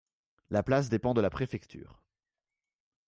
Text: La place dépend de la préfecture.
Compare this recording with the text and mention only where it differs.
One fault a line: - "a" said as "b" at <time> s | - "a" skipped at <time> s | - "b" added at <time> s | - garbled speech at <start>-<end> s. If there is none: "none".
none